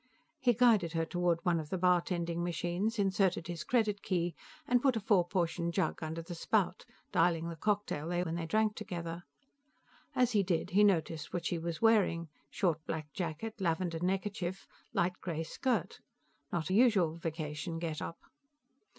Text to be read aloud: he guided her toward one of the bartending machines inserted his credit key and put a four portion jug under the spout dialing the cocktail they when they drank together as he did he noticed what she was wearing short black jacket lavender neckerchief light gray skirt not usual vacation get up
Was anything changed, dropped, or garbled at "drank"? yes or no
no